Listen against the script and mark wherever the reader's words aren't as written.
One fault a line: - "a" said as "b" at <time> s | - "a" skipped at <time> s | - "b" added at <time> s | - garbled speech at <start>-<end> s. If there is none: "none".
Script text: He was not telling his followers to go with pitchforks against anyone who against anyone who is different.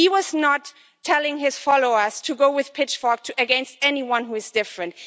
- "against anyone who" skipped at 4.3 s